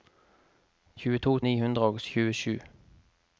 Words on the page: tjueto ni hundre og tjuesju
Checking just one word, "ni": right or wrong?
right